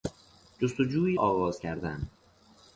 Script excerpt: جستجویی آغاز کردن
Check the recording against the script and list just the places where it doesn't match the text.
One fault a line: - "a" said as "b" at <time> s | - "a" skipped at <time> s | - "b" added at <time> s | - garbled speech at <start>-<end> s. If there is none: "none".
none